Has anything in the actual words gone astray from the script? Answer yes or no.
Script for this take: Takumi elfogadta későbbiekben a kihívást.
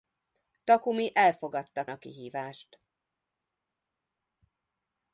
yes